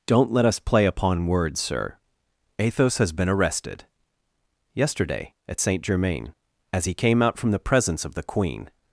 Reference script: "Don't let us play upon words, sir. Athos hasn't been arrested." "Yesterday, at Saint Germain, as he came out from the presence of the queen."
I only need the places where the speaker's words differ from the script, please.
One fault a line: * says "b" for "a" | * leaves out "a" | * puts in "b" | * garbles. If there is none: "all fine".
* says "has" for "hasn't"